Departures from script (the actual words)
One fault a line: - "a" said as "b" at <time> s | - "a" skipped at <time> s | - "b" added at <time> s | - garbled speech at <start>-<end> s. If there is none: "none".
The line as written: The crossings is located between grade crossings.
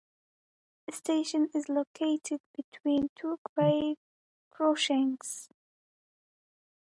- "crossings" said as "station" at 0.9 s
- "two" added at 3.2 s